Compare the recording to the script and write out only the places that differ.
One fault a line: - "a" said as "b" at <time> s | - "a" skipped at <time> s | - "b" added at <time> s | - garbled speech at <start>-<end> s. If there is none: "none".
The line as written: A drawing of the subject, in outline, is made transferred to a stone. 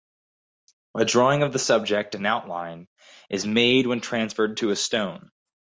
- "when" added at 3.9 s